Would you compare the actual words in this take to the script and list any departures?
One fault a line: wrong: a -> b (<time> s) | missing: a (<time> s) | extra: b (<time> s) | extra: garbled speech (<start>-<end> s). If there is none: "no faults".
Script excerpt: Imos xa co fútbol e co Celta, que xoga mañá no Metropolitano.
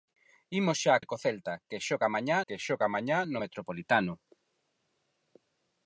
extra: e (1.0 s)
wrong: fútbol e co Celta -> Celta que xoga mañá (1.2 s)